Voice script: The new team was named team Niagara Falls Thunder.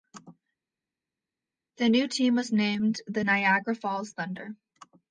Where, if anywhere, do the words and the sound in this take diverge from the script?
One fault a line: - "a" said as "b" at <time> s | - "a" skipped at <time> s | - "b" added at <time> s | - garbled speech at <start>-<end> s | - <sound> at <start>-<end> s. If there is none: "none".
- "team" said as "the" at 3.1 s